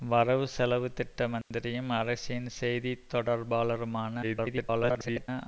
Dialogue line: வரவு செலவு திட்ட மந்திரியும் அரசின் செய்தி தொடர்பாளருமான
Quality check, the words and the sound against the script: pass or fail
fail